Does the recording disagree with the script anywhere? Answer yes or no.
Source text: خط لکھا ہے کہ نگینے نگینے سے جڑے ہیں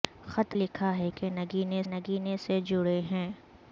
no